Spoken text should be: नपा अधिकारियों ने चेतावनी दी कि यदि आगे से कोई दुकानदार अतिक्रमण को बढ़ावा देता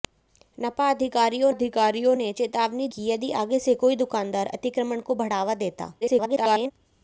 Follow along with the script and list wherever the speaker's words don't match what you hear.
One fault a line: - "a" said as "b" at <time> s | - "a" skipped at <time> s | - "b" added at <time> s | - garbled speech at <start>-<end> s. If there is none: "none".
- "अधिकारियों" added at 1.5 s
- "दी" skipped at 2.9 s
- garbled speech at 6.0-6.7 s